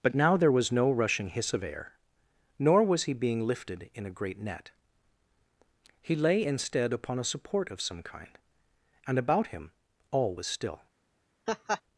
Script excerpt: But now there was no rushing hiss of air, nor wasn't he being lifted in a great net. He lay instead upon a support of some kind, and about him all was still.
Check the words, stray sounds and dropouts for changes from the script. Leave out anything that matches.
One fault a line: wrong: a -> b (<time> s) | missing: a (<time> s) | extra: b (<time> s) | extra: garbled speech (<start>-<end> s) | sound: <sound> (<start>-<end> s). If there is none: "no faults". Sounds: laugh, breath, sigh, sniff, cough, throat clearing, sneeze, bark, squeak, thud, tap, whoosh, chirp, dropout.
wrong: wasn't -> was (2.8 s)
sound: laugh (11.5-11.8 s)